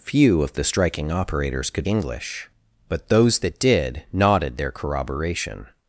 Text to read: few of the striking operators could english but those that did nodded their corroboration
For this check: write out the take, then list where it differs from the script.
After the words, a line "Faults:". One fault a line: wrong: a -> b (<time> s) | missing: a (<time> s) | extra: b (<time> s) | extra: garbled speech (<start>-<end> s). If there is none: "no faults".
few of the striking operators could english but those that did nodded their corroboration
Faults:
no faults